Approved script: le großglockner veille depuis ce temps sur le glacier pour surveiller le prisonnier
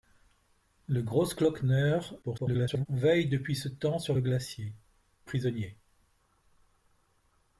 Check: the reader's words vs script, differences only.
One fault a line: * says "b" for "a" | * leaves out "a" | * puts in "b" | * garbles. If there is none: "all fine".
* garbles
* leaves out "pour surveiller le"